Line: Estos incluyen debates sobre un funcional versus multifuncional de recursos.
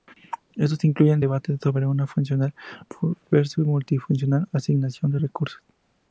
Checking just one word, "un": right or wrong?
wrong